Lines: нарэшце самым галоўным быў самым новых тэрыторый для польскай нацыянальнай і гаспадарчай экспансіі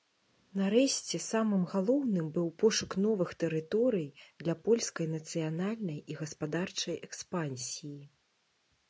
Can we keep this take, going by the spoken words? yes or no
no